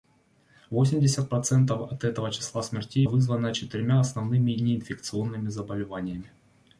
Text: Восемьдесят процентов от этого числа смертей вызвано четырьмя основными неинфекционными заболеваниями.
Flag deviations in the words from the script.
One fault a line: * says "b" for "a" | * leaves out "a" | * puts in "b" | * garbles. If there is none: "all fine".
all fine